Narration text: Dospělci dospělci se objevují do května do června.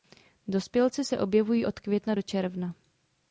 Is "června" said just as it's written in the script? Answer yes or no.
yes